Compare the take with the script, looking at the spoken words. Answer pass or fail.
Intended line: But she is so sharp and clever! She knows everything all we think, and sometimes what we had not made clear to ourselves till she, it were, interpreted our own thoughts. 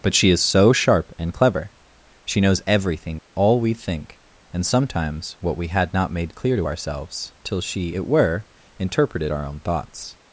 pass